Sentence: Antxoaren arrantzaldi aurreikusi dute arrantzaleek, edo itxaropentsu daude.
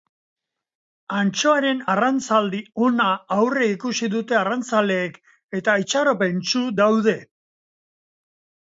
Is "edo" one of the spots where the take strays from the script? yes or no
yes